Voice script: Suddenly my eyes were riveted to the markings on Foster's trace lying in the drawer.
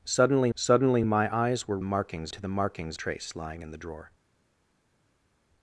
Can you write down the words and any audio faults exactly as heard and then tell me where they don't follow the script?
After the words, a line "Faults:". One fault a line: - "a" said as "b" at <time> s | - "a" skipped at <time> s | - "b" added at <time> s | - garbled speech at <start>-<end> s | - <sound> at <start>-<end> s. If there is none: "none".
Suddenly suddenly my eyes were markings to the markings trace lying in the drawer.
Faults:
- "suddenly" added at 0.6 s
- "riveted" said as "markings" at 1.8 s
- "on Foster's" skipped at 3.0 s